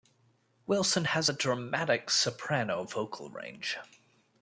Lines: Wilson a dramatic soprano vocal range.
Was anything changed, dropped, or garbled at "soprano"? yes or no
no